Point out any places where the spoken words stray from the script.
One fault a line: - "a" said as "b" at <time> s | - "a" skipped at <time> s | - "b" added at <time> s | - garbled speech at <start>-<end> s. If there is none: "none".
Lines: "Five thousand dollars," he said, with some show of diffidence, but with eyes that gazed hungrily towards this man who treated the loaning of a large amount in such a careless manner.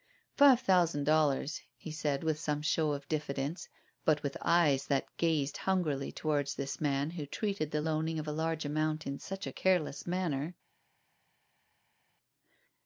none